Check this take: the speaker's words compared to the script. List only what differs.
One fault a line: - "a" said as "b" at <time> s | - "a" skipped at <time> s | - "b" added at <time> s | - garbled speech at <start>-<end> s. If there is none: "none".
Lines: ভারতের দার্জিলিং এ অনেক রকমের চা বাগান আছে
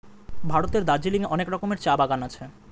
none